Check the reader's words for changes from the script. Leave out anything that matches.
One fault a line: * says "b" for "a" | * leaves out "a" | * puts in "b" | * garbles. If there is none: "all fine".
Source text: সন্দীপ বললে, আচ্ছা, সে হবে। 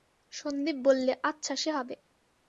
all fine